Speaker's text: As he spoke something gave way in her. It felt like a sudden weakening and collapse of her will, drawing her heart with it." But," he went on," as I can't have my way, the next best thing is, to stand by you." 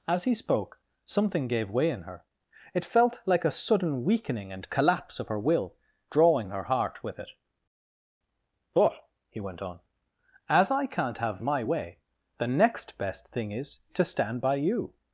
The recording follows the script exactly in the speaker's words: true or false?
true